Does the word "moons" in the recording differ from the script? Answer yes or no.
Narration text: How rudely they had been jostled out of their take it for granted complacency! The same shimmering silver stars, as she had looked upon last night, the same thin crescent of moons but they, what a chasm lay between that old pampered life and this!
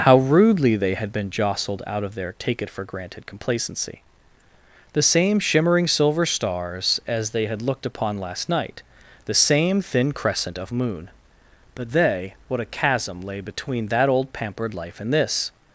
yes